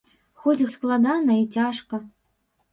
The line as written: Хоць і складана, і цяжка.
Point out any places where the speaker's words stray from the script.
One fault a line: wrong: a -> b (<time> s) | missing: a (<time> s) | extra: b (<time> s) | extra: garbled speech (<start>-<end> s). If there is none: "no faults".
no faults